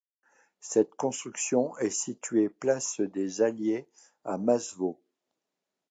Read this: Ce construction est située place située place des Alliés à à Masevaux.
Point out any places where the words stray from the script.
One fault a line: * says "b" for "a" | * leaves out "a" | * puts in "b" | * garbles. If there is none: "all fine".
* says "Cette" for "Ce"
* leaves out "située place"
* leaves out "à"